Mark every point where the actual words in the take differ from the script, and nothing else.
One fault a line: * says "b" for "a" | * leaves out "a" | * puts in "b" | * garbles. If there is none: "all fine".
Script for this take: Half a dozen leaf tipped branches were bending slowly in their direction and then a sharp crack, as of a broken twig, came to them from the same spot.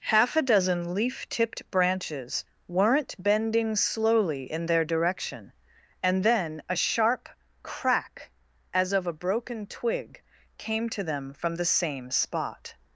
* says "weren't" for "were"